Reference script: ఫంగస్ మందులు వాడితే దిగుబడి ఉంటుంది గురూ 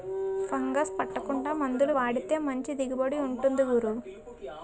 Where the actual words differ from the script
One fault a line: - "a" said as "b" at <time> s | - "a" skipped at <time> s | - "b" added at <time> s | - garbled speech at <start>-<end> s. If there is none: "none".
- "పట్టకుండా" added at 1.0 s
- "మంచి" added at 2.4 s